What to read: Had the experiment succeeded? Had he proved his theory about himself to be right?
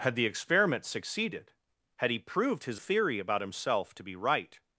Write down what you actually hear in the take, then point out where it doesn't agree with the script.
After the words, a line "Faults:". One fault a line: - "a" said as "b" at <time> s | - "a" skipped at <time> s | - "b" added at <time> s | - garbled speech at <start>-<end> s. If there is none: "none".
Had the experiment succeeded? Had he proved his theory about himself to be right?
Faults:
none